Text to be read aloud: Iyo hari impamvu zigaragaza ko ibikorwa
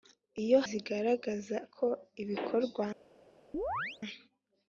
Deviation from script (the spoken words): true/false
true